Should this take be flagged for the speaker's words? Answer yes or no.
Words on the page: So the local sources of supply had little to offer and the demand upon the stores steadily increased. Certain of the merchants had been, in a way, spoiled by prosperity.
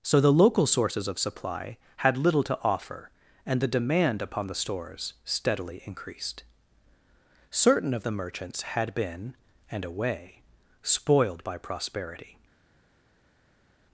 yes